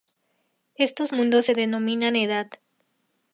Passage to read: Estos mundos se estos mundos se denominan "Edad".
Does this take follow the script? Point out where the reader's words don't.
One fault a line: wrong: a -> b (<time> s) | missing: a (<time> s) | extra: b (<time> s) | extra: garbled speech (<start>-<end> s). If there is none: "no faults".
missing: estos mundos se (1.5 s)